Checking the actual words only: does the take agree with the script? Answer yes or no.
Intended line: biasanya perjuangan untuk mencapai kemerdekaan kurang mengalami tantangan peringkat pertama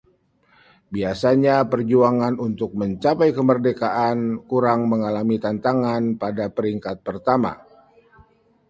no